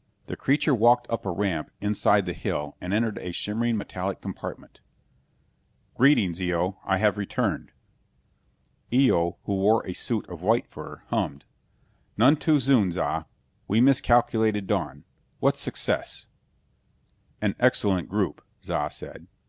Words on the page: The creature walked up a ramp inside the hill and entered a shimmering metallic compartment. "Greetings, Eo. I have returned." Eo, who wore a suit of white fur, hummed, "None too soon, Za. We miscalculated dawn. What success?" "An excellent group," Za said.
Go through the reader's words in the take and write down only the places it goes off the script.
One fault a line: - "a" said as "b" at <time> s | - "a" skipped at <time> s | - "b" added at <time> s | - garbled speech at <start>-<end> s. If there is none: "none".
none